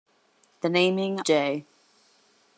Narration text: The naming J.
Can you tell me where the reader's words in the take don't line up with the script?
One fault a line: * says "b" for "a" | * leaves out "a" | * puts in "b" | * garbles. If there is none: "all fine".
all fine